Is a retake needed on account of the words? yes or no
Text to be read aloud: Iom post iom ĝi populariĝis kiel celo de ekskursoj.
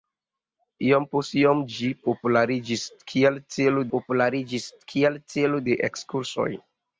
yes